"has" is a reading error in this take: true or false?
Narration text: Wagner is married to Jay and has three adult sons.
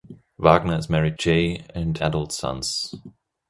true